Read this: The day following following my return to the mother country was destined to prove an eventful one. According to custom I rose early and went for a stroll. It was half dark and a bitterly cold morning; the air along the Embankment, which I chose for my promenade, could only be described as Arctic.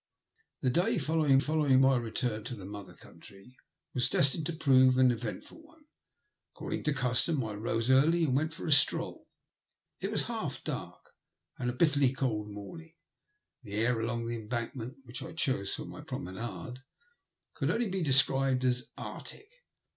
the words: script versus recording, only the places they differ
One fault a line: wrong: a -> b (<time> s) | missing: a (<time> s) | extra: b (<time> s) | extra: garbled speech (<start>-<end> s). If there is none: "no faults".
no faults